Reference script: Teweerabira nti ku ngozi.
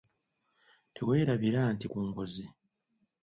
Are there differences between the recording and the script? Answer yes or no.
no